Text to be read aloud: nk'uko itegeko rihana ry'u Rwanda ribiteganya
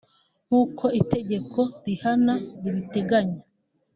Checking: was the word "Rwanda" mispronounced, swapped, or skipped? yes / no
yes